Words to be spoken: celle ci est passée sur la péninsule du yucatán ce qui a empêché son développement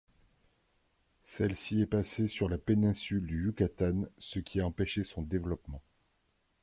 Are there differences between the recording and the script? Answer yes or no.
no